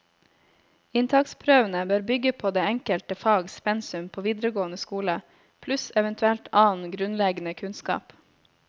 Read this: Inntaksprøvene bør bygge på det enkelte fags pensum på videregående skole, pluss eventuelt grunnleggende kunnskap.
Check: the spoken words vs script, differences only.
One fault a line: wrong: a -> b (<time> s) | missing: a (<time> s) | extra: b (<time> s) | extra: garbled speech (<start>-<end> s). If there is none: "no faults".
extra: annen (6.7 s)